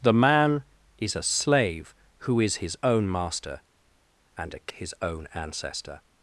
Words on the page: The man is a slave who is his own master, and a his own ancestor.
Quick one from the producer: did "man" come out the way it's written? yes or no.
yes